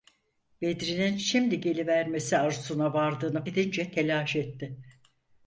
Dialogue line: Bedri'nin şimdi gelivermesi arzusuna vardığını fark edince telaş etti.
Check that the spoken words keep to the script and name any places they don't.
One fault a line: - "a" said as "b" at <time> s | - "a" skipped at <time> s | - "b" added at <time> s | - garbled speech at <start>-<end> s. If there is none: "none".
- "fark" skipped at 3.5 s